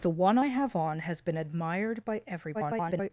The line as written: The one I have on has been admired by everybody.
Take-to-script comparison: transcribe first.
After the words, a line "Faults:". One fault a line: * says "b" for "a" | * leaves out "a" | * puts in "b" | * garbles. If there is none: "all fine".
The one I have on has been admired by everybody. [garbled]
Faults:
* garbles